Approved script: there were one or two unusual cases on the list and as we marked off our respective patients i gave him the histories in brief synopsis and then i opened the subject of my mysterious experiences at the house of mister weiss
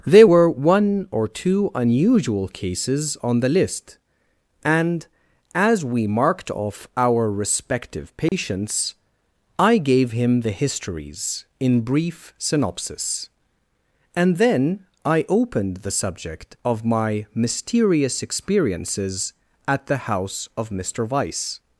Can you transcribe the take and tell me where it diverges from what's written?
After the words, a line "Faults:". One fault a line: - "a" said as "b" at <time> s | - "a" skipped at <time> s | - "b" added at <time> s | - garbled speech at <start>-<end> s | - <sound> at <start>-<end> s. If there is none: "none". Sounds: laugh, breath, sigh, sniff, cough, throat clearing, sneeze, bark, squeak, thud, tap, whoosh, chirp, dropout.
there were one or two unusual cases on the list and as we marked off our respective patients i gave him the histories in brief synopsis and then i opened the subject of my mysterious experiences at the house of mister weiss
Faults:
- dropout at 8.3-8.3 s